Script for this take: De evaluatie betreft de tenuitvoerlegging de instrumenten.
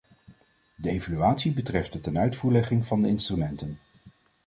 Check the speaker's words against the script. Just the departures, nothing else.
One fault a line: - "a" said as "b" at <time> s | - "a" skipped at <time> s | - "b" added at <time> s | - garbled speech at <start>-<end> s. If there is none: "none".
- "van" added at 2.9 s